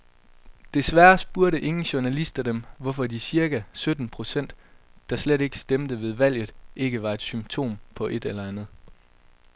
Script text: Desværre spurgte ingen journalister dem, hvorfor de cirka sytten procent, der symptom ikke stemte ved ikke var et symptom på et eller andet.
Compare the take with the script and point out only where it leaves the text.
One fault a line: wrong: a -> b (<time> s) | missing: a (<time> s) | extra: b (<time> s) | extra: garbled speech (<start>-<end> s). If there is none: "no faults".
wrong: symptom -> slet (5.2 s)
extra: valget (6.1 s)